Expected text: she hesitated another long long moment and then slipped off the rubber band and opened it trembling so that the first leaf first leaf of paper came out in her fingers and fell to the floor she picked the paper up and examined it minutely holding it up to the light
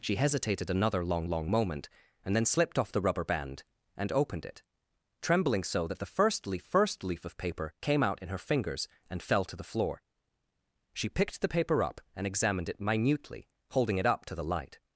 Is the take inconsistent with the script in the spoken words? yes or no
no